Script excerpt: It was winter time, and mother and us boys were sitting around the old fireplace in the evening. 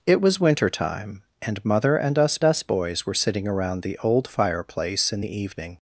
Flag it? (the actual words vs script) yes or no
yes